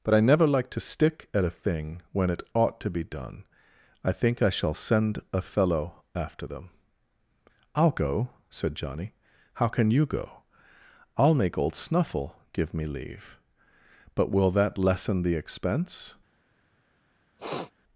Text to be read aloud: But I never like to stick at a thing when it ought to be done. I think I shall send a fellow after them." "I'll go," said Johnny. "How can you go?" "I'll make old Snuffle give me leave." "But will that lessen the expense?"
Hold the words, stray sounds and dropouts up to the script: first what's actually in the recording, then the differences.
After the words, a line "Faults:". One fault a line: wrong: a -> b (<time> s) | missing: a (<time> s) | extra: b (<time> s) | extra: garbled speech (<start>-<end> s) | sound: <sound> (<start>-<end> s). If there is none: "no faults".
But I never like to stick at a thing when it ought to be done. I think I shall send a fellow after them." "I'll go," said Johnny. "How can you go?" "I'll make old Snuffle give me leave." "But will that lessen the expense?"
Faults:
sound: sniff (17.4-17.7 s)